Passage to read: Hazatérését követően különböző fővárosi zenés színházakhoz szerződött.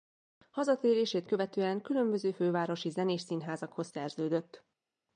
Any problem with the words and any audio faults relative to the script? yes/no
no